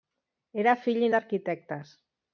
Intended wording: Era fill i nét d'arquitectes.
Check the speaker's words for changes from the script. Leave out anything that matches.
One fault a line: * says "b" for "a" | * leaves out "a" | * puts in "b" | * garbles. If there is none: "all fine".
* leaves out "nét"